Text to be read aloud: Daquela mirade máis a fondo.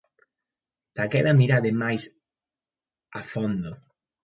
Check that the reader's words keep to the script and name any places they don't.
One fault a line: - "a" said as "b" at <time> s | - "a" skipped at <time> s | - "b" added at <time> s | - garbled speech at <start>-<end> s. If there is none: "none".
none